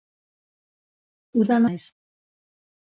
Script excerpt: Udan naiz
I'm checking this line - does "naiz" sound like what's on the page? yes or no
yes